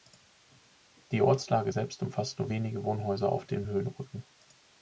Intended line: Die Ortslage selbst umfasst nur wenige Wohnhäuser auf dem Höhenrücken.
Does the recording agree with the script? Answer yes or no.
yes